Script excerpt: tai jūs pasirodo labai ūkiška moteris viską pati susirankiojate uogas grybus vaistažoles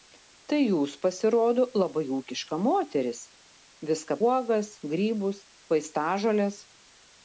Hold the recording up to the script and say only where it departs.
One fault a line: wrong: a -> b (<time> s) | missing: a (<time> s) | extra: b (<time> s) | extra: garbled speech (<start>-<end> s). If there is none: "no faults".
missing: pati susirankiojate (4.2 s)